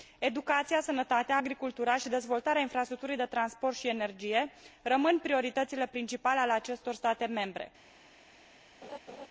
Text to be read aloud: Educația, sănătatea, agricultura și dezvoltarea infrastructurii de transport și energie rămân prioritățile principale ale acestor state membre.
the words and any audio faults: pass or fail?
fail